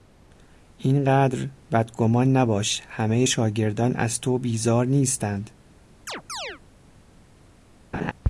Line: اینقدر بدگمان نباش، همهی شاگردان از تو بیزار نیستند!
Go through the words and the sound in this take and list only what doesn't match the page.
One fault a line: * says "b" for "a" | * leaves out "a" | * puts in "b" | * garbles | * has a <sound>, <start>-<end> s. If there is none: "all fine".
* has a chirp, 6.1-6.6 s
* has a laugh, 7.9-8.1 s